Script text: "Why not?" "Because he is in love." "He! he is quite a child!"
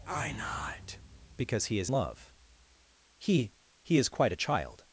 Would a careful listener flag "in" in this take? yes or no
yes